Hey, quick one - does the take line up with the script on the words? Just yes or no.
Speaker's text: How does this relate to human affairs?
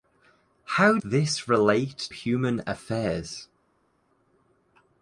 no